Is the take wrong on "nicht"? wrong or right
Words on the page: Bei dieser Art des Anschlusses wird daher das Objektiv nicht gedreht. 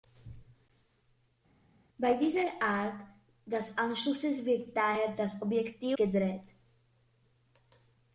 wrong